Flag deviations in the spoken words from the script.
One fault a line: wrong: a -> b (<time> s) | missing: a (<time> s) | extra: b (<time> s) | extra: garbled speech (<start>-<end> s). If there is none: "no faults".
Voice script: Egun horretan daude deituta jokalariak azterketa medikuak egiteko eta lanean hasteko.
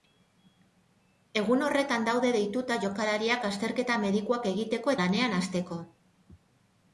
missing: eta (5.0 s)